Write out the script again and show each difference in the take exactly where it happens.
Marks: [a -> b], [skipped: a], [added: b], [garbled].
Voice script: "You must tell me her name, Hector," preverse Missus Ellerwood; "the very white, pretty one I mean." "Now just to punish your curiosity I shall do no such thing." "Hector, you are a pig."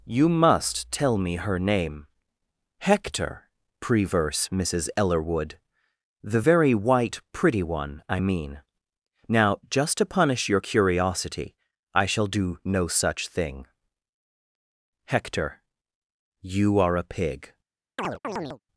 "You must tell me her name, Hector," preverse Missus Ellerwood; "the very white, pretty one I mean." "Now just to punish your curiosity I shall do no such thing." "Hector, you are a pig."